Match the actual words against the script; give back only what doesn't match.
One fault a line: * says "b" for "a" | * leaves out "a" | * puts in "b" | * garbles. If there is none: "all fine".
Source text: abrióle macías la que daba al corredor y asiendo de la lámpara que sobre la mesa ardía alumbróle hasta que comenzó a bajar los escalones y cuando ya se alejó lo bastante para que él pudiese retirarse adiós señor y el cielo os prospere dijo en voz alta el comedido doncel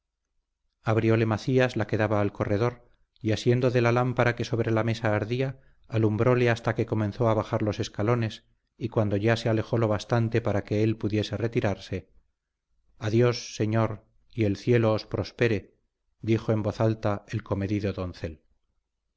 all fine